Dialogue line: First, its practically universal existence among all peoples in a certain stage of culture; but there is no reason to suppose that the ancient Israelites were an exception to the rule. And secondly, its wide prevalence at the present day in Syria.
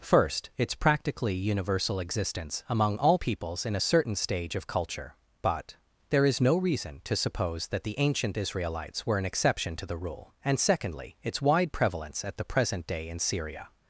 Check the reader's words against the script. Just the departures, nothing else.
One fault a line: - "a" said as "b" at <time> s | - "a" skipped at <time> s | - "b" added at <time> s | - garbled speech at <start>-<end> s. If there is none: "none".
none